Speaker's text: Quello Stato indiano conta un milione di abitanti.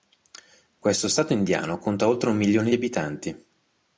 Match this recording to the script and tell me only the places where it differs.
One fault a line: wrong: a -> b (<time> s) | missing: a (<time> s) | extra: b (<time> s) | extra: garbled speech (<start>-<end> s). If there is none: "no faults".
wrong: Quello -> Questo (0.8 s)
extra: oltre (2.1 s)